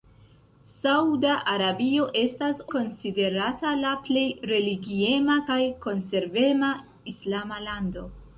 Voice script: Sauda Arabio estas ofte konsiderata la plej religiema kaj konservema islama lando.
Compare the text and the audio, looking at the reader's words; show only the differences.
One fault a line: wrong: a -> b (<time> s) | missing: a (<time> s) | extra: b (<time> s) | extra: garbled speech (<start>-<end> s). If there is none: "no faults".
missing: ofte (2.6 s)